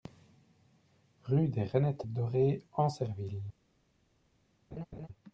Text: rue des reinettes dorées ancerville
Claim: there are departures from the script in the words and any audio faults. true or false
true